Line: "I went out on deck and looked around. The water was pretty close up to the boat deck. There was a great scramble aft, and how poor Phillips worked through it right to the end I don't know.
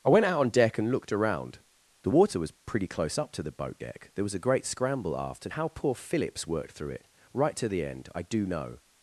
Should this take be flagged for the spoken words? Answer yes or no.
yes